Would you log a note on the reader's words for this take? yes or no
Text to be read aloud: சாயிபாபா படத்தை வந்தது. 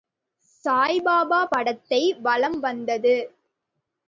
yes